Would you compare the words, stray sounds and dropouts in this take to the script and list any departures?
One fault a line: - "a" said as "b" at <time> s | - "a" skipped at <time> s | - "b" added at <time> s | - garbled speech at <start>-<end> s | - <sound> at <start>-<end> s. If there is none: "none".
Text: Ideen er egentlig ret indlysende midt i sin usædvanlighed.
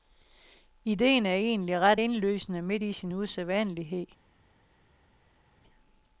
none